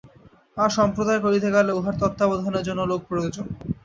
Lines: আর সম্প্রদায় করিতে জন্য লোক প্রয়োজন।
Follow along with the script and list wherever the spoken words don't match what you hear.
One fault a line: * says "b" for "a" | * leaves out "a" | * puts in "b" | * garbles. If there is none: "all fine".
* puts in "গেলে উহার তত্ত্বাবধানের"